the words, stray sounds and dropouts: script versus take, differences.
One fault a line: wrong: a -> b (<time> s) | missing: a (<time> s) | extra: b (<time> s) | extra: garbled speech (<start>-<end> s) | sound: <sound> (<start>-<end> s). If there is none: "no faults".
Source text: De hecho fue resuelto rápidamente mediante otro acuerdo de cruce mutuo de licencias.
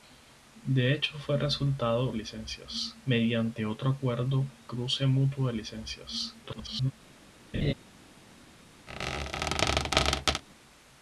wrong: rápidamente -> licencias (2.1 s)
missing: de (4.4 s)
extra: garbled speech (6.4-6.9 s)
sound: laugh (7.5-7.7 s)
sound: squeak (8.9-10.4 s)